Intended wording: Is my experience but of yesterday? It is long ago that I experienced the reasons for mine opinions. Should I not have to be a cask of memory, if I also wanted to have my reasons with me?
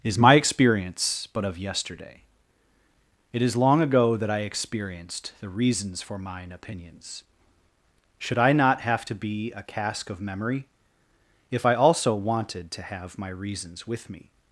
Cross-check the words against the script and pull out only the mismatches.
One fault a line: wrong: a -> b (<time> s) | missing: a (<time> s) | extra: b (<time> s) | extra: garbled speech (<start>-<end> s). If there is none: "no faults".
no faults